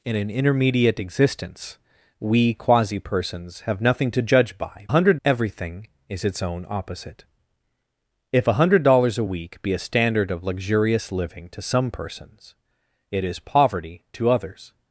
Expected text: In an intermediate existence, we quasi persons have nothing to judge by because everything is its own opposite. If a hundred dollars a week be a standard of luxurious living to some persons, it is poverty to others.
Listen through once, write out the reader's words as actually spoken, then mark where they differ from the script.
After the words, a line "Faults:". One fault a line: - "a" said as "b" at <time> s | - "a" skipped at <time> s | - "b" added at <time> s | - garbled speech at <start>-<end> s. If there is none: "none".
In an intermediate existence, we quasi persons have nothing to judge by hundred everything is its own opposite. If a hundred dollars a week be a standard of luxurious living to some persons, it is poverty to others.
Faults:
- "because" said as "hundred" at 4.9 s